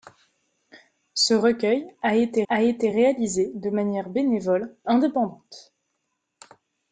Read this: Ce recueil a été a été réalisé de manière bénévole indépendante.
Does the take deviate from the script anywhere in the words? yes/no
no